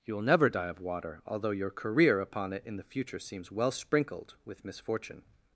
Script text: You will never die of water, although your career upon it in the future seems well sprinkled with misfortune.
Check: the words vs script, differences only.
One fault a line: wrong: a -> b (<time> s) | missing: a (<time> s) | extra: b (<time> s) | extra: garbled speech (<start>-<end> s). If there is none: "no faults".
no faults